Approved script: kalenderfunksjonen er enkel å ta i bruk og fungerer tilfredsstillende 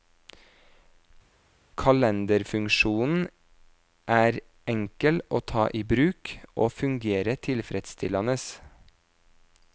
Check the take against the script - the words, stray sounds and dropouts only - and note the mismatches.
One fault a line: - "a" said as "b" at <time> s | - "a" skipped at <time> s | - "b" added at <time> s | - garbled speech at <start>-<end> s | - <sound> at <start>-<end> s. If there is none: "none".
none